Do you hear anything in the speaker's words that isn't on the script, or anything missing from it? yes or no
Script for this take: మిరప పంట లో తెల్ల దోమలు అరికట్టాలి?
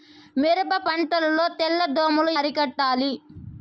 no